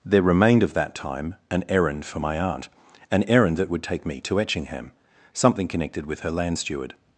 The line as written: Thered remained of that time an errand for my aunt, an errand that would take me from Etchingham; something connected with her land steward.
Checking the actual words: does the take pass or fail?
fail